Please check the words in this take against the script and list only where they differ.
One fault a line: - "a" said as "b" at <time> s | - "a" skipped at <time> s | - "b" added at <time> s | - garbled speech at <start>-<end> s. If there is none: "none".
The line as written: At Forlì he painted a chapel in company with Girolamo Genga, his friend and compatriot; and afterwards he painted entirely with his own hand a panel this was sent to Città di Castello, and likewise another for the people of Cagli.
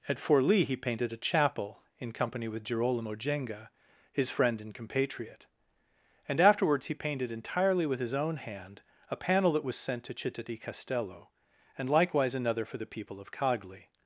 - "this" said as "that" at 9.5 s